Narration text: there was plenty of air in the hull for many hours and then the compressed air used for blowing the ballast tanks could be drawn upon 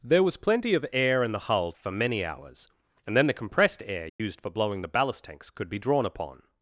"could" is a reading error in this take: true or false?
false